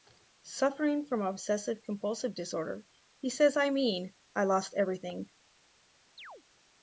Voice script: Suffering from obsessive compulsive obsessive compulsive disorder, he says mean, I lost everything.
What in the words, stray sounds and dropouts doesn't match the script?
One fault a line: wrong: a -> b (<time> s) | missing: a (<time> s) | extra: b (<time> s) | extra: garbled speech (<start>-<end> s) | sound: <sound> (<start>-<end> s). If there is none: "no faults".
missing: obsessive compulsive (2.3 s)
extra: I (3.5 s)
sound: chirp (6.2-6.4 s)